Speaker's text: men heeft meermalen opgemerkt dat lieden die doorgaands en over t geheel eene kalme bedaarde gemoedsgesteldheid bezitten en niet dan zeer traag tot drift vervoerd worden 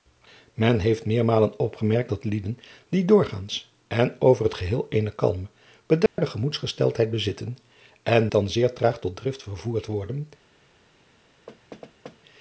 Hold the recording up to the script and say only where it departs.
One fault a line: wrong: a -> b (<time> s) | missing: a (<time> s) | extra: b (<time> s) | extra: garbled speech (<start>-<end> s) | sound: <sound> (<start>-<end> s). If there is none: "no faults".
sound: dropout (6.1-6.2 s)
missing: niet (8.3 s)
sound: thud (11.5-12.2 s)